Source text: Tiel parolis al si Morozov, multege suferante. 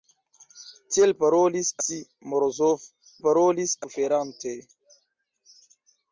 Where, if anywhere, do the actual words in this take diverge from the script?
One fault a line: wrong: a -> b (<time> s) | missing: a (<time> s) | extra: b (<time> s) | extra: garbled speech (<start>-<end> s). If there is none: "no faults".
missing: al (1.7 s)
wrong: multege -> parolis (3.2 s)